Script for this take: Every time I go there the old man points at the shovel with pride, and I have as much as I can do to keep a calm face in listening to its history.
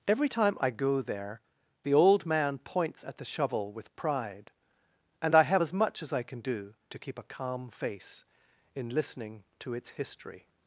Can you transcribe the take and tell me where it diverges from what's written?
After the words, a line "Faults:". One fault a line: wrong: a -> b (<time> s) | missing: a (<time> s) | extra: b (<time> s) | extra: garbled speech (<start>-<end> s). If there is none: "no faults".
Every time I go there the old man points at the shovel with pride, and I have as much as I can do to keep a calm face in listening to its history.
Faults:
no faults